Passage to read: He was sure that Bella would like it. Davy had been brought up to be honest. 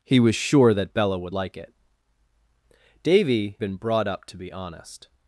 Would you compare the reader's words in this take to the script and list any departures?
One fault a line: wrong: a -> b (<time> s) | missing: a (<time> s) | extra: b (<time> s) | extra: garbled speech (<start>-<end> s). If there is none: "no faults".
missing: had (3.6 s)